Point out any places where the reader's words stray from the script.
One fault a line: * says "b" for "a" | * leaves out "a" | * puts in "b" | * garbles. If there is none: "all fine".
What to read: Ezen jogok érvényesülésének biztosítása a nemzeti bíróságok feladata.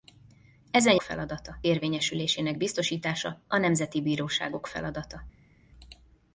* says "feladata" for "jogok"